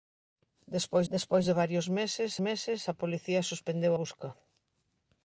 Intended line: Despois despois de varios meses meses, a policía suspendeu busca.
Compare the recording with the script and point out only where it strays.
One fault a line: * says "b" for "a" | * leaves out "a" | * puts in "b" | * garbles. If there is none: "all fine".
all fine